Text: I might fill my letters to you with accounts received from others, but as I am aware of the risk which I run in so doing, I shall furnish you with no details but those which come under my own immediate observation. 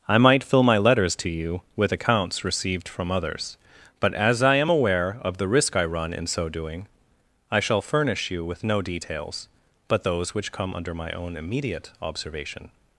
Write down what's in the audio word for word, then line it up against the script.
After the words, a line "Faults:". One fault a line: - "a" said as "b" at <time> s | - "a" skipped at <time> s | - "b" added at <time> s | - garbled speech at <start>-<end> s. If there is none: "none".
I might fill my letters to you with accounts received from others, but as I am aware of the risk I run in so doing, I shall furnish you with no details but those which come under my own immediate observation.
Faults:
- "which" skipped at 5.8 s